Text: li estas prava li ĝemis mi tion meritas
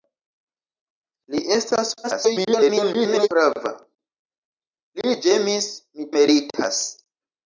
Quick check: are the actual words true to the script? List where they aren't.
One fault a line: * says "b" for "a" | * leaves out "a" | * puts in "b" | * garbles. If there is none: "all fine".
* garbles
* leaves out "tion"